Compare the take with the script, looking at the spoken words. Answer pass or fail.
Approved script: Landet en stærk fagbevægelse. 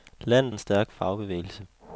pass